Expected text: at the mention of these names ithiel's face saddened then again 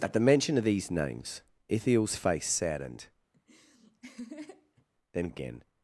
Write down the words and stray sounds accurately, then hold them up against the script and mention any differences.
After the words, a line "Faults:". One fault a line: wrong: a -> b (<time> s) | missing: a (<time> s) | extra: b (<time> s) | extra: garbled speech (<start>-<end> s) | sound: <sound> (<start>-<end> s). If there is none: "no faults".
at the mention of these names ithiel's face saddened then again
Faults:
sound: laugh (3.3-4.9 s)